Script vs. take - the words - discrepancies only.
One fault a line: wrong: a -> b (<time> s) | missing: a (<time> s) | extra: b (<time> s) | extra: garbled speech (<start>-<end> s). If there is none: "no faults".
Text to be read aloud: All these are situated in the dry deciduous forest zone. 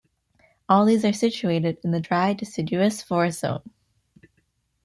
no faults